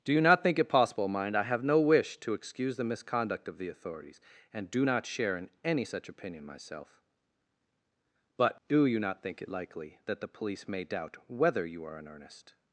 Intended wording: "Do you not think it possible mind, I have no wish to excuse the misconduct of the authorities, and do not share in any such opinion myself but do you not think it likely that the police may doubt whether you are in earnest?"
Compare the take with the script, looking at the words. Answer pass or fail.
pass